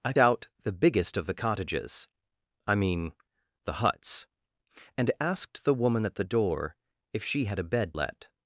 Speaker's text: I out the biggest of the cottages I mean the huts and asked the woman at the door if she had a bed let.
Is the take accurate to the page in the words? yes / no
yes